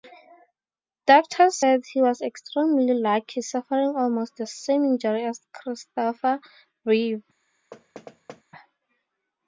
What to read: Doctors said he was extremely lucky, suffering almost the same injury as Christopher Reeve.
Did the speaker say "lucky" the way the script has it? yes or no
yes